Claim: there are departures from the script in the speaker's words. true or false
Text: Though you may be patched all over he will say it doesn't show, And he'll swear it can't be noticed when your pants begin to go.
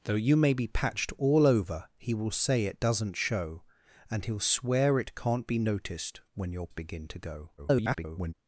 true